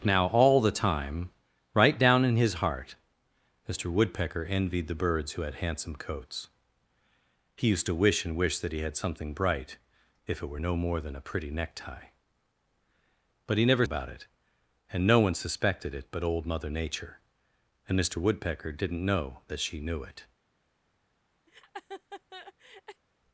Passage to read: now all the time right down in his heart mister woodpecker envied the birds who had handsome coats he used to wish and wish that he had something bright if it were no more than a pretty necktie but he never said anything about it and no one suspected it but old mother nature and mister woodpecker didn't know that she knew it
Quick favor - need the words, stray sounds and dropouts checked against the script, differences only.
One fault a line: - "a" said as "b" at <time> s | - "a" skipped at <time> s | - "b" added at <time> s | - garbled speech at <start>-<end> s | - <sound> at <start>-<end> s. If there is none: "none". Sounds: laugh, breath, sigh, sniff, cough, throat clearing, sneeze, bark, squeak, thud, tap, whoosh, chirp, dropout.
- "said anything" skipped at 13.8 s
- laugh at 21.5-23.0 s